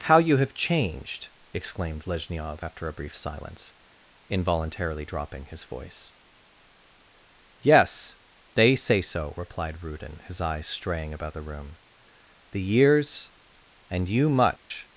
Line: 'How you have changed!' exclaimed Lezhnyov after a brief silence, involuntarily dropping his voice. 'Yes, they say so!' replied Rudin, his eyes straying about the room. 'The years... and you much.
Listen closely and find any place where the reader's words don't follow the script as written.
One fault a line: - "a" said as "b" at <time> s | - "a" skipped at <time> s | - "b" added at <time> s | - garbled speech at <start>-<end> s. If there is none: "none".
none